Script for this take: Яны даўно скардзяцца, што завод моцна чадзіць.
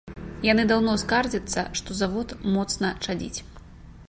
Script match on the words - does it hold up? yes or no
yes